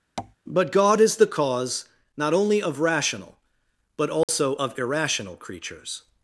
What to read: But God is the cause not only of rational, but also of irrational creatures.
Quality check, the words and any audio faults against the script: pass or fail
fail